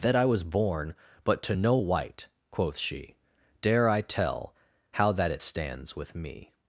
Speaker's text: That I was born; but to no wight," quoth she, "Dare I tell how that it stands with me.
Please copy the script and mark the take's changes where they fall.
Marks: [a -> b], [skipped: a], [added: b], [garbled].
That I was born; but to no wight," quoth she, "Dare I tell how that it stands with me.